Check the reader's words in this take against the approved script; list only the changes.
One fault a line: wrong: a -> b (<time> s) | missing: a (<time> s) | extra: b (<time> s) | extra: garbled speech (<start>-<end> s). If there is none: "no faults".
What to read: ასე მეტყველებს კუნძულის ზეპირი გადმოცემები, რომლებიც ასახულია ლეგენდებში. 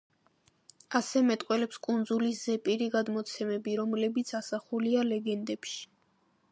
no faults